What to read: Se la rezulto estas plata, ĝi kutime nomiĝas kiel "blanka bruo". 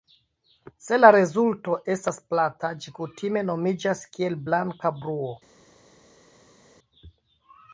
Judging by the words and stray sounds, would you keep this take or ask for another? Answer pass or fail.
pass